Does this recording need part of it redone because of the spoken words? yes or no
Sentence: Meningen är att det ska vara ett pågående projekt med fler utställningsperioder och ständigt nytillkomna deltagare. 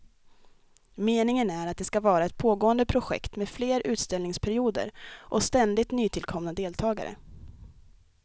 no